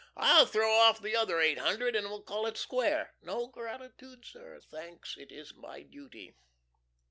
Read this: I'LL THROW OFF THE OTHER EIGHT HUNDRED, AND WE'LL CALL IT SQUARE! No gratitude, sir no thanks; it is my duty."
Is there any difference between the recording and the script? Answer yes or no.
yes